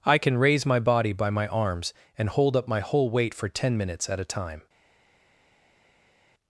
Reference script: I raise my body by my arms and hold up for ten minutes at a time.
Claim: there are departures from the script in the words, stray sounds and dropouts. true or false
true